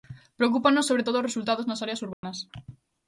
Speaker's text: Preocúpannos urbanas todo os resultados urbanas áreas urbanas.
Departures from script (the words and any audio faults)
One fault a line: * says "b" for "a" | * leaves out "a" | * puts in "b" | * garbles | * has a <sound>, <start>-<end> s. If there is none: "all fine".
* says "sobre" for "urbanas"
* says "nas" for "urbanas"
* has a dropout, 2.1-2.2 s